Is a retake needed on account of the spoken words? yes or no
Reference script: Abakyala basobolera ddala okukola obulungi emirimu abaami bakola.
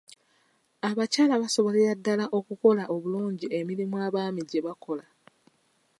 yes